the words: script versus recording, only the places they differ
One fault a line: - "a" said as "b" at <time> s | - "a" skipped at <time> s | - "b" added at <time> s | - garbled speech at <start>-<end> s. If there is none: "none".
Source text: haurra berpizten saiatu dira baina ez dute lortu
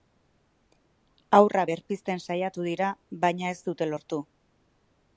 none